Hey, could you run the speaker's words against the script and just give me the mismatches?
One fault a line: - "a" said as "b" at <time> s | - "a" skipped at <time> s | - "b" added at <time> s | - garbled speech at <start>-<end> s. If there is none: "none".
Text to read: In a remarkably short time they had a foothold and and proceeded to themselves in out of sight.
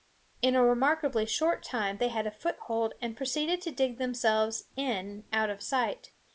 - "and" skipped at 3.1 s
- "dig" added at 3.7 s